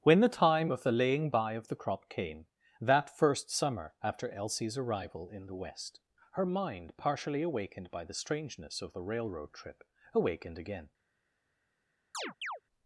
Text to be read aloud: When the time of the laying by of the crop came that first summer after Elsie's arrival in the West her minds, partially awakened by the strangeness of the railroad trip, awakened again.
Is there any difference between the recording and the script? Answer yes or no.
yes